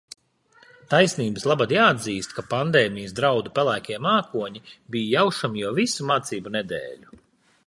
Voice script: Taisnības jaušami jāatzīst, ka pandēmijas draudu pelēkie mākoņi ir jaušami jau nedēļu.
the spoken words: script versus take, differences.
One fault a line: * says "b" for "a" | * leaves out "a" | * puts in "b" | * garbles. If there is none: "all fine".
* says "labad" for "jaušami"
* says "bija" for "ir"
* puts in "visu mācību"